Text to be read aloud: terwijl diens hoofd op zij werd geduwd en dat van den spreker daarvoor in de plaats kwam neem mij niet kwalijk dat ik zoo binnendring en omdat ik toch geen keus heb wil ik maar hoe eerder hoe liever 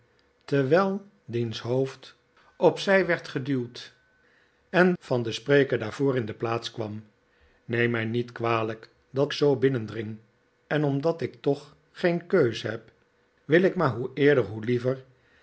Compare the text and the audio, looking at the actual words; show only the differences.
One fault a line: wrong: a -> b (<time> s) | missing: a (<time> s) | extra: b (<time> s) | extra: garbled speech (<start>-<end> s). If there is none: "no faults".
missing: dat (4.9 s)
missing: ik (9.3 s)